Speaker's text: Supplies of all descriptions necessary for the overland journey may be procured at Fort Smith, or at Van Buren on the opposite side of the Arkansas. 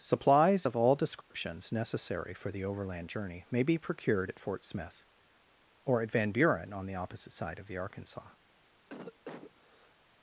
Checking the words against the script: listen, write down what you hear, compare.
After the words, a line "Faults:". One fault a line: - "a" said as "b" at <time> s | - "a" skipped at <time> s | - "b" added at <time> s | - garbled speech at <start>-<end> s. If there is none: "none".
Supplies of all descriptions necessary for the overland journey may be procured at Fort Smith, or at Van Buren on the opposite side of the Arkansas.
Faults:
none